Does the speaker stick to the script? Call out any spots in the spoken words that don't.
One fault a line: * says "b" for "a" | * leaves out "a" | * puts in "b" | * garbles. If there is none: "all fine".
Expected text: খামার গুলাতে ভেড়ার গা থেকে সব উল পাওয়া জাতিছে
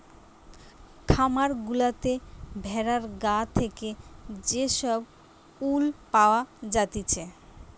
* puts in "যে"